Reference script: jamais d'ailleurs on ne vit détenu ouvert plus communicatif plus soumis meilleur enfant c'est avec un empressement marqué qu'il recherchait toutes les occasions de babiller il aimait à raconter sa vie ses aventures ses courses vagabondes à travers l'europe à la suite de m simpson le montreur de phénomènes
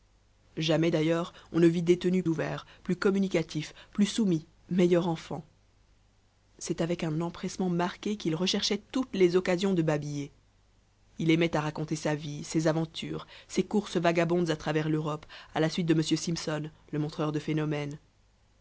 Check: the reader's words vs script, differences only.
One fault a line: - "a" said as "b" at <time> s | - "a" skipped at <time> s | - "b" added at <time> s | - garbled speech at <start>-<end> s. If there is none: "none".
none